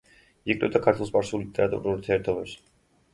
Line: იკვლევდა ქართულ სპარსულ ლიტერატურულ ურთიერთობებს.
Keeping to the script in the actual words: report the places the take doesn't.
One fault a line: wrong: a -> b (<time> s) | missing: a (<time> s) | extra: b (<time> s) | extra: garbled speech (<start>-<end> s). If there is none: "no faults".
no faults